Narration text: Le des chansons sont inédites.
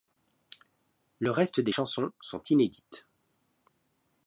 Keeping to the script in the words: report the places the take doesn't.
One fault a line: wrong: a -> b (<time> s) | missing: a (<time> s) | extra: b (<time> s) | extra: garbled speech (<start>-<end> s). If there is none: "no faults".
extra: reste (1.3 s)